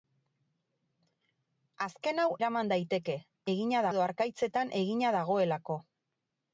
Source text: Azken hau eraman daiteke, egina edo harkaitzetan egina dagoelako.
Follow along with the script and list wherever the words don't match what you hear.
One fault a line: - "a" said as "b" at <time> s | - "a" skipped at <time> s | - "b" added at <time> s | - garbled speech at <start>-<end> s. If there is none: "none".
none